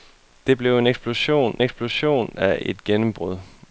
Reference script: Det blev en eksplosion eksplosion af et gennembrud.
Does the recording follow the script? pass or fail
pass